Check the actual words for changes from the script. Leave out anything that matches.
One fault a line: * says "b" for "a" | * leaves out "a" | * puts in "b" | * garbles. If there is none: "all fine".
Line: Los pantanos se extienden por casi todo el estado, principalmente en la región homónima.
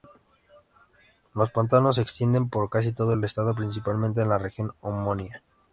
all fine